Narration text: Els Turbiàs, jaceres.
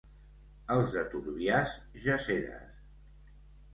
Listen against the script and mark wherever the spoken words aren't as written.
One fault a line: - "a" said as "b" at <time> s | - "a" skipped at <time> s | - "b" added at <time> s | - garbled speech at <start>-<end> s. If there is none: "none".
- "de" added at 0.9 s